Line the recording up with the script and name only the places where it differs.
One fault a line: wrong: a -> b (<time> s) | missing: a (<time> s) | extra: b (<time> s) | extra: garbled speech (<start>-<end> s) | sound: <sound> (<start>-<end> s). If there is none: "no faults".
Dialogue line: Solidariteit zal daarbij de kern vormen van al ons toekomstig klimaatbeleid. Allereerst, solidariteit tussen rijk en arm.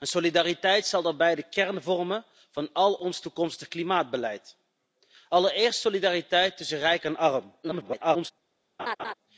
extra: garbled speech (7.6-8.3 s)
sound: laugh (8.8-9.1 s)